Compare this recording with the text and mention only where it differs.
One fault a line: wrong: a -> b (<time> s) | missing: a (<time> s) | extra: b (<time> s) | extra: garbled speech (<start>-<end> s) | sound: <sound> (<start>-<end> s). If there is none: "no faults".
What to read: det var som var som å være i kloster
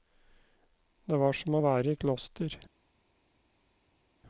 missing: var som (1.6 s)